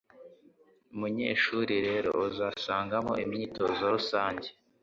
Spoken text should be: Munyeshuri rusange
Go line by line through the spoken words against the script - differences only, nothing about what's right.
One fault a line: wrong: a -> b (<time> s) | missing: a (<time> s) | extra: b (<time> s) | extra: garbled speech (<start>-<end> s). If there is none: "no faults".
extra: rero uzasangamo imyitozo (1.9 s)